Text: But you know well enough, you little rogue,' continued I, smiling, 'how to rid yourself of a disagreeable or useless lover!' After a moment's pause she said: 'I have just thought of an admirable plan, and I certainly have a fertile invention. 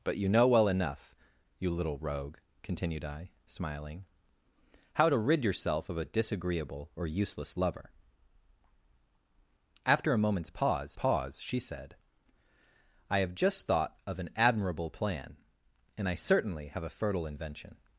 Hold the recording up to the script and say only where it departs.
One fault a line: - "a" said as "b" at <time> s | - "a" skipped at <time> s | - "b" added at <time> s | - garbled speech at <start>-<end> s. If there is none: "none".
- "pause" added at 10.9 s